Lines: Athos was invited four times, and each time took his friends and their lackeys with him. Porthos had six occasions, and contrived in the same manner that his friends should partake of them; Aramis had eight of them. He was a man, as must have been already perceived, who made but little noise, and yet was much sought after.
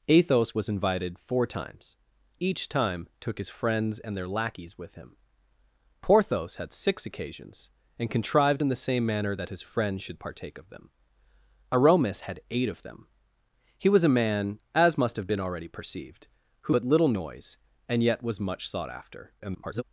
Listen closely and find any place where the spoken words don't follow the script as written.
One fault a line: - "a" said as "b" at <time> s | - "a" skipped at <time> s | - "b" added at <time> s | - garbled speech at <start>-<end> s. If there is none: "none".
- "and" skipped at 1.9 s
- "made" skipped at 16.7 s
- garbled speech at 19.4-19.8 s